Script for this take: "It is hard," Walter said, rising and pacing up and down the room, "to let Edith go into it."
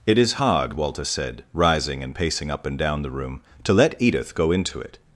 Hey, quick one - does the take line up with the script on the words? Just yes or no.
yes